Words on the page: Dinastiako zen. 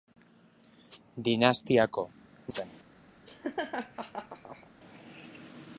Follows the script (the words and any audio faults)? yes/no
no